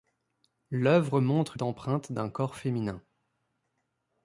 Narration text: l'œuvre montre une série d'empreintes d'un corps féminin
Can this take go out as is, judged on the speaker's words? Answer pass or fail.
fail